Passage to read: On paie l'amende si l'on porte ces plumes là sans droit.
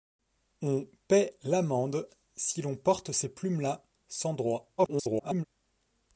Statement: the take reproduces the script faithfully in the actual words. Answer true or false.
false